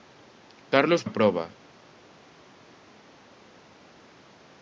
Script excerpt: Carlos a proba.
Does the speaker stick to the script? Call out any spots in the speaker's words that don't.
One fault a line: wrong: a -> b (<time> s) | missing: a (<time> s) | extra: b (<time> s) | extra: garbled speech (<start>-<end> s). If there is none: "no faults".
no faults